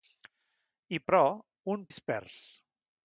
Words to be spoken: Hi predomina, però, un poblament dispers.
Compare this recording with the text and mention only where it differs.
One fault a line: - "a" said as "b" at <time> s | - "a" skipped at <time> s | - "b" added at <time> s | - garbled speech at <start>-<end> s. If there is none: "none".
- "predomina" skipped at 1.0 s
- "poblament" skipped at 1.9 s